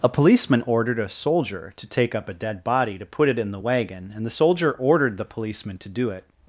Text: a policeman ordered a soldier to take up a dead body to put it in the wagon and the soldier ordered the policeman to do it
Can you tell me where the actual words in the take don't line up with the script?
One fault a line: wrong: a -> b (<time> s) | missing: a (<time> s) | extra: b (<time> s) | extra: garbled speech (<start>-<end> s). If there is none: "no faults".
no faults